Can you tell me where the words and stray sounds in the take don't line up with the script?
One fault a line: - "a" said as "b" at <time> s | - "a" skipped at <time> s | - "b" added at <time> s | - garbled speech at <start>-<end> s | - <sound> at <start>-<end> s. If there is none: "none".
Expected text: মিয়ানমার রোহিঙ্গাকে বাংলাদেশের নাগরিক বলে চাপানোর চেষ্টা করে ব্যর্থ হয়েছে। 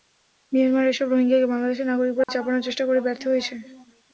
- "এসব" added at 0.9 s
- dropout at 2.2-2.3 s